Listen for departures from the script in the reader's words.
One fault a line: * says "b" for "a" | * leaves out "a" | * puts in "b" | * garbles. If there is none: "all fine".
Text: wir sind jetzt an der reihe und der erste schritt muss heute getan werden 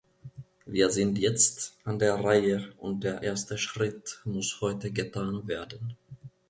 all fine